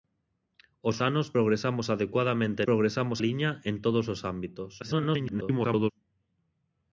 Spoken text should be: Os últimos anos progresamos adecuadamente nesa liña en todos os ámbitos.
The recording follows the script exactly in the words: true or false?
false